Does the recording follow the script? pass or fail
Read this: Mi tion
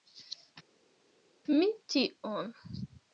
pass